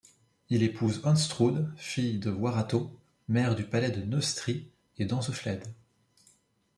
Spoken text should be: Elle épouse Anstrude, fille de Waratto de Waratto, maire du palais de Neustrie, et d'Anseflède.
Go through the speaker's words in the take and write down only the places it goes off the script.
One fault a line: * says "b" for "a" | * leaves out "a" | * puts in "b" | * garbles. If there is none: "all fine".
* says "Il" for "Elle"
* leaves out "de Waratto"